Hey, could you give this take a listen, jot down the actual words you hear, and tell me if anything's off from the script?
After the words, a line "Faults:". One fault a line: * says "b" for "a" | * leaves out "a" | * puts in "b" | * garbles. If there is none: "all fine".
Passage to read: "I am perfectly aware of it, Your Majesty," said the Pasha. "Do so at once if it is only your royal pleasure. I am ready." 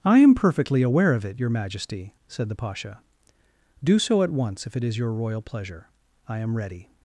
"I am perfectly aware of it, Your Majesty," said the Pasha. "Do so at once if it is your royal pleasure. I am ready."
Faults:
* leaves out "only"